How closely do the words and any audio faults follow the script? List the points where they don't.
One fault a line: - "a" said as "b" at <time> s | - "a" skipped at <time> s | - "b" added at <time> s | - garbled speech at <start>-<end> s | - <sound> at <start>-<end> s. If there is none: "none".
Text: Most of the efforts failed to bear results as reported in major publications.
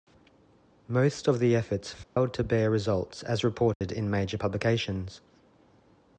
- dropout at 2.0-2.2 s
- dropout at 3.7-3.8 s